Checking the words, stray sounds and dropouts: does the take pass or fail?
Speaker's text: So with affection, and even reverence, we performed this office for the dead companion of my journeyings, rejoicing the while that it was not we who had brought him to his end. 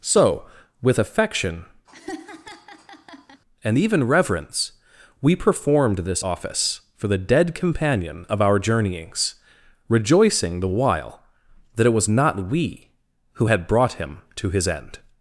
fail